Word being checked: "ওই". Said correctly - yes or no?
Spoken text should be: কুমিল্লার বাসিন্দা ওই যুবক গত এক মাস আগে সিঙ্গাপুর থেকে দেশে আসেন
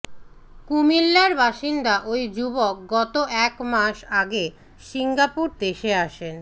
yes